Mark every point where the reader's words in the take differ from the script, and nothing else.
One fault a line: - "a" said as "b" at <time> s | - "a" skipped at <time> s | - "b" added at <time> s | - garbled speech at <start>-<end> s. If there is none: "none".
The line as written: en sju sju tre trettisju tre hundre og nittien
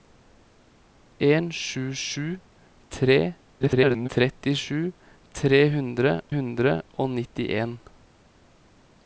- garbled speech at 3.6-4.1 s
- "hundre" added at 6.3 s